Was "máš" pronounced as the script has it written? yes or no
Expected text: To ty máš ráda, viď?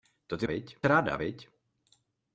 no